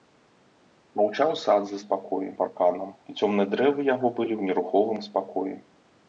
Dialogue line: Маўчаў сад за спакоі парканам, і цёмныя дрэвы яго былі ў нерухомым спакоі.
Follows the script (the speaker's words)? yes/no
yes